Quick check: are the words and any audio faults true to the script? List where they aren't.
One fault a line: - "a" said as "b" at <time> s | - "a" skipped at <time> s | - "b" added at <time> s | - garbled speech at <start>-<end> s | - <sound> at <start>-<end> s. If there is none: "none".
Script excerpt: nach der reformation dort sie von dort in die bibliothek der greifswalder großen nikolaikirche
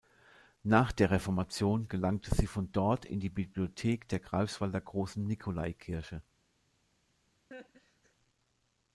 - "dort" said as "gelangte" at 1.9 s
- laugh at 7.5-8.1 s